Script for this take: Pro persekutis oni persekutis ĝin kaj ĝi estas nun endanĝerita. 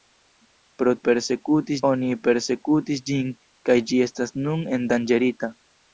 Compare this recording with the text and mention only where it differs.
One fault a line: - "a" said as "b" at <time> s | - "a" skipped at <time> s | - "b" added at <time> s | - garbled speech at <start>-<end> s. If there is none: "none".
none